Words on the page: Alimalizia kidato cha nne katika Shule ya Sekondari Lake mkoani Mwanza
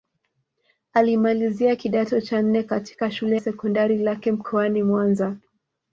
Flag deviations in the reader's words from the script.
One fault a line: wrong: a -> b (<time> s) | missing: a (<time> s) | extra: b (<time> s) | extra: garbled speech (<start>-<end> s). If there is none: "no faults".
missing: ya (3.4 s)